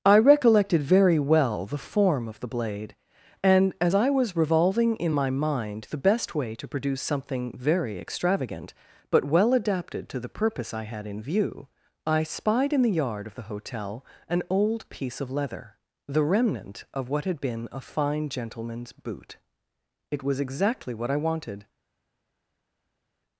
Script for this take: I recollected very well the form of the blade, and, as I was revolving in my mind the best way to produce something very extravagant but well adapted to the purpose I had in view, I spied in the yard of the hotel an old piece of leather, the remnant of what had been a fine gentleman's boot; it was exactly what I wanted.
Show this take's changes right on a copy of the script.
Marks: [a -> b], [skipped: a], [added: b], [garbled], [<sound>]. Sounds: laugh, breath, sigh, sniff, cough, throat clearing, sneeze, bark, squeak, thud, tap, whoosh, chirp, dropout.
I recollected very well the form of the blade, and, as I was revolving in my mind the best way to produce something very extravagant but well adapted to the purpose I had in view, I spied in the yard of the hotel an old piece of leather, the remnant of what had been a fine gentleman's boot; it was exactly what I wanted.